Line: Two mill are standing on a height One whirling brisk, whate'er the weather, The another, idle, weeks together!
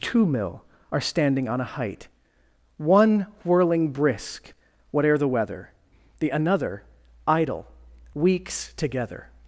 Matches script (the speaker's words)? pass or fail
pass